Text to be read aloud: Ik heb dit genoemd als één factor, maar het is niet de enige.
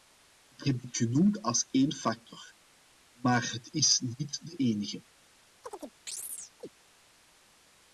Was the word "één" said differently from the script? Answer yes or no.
no